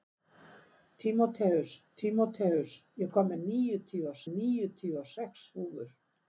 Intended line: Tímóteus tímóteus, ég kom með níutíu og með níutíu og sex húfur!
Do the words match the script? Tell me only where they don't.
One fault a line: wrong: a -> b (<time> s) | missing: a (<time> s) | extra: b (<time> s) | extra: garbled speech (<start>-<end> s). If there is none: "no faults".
no faults